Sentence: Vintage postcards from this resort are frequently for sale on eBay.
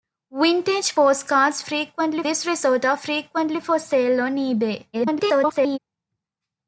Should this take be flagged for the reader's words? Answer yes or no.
yes